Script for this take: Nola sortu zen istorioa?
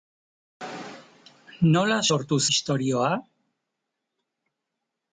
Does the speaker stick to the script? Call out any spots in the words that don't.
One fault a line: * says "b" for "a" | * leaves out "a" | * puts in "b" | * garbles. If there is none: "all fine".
* leaves out "zen"